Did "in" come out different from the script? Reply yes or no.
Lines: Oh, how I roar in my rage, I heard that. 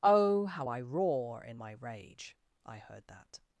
no